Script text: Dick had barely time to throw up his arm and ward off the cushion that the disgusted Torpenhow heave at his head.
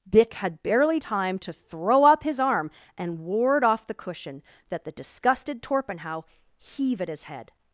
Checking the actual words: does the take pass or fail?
pass